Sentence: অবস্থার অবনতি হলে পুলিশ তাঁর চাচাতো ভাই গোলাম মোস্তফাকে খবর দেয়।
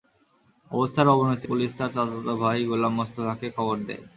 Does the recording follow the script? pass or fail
fail